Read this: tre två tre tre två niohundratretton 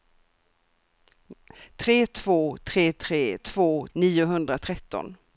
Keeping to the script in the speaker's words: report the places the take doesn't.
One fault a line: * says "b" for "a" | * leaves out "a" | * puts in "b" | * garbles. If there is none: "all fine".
all fine